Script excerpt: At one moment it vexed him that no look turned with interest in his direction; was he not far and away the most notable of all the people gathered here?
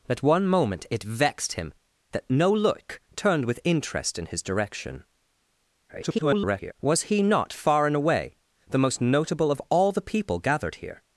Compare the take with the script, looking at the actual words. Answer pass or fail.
fail